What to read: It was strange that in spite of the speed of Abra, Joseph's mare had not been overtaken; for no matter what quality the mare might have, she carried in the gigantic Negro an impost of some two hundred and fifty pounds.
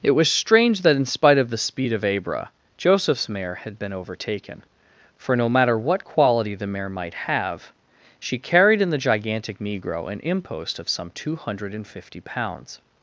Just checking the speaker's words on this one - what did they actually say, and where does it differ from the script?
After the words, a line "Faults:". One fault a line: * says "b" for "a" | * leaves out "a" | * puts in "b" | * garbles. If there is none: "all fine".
It was strange that in spite of the speed of Abra, Joseph's mare had been overtaken; for no matter what quality the mare might have, she carried in the gigantic Negro an impost of some two hundred and fifty pounds.
Faults:
* leaves out "not"